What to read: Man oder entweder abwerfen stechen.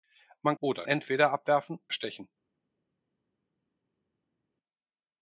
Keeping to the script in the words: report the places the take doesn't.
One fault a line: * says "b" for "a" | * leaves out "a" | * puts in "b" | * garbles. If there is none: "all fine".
all fine